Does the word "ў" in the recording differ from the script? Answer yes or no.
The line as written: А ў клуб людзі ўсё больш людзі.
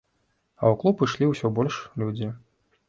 no